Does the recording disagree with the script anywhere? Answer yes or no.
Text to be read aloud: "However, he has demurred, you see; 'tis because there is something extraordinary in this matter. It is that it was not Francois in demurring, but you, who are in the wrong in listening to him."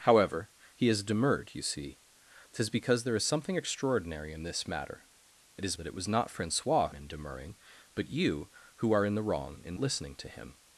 no